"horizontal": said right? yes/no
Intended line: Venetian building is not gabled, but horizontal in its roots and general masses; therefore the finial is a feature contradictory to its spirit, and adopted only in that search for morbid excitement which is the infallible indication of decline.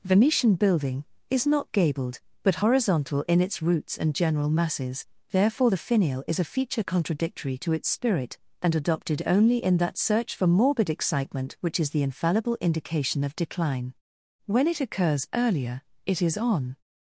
yes